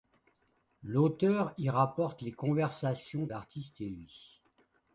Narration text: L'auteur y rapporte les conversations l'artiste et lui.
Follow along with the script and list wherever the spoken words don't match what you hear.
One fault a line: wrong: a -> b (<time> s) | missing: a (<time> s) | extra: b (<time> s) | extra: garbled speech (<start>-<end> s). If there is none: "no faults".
no faults